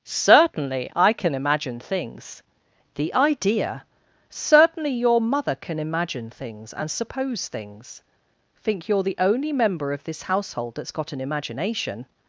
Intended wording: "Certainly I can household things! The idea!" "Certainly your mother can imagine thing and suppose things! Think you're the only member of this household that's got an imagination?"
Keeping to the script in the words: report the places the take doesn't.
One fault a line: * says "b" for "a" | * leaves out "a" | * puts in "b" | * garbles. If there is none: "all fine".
* says "imagine" for "household"
* says "things" for "thing"